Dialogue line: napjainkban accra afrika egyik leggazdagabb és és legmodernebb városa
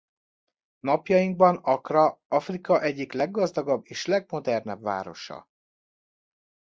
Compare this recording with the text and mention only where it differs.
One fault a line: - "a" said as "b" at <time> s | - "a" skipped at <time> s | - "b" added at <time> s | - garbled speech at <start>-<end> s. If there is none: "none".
- "és" skipped at 4.0 s